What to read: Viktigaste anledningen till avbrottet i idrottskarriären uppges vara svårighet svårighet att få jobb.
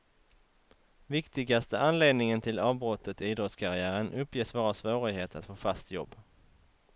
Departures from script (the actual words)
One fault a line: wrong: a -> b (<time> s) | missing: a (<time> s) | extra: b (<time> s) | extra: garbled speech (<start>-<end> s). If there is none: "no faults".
missing: svårighet (5.3 s)
extra: fast (5.6 s)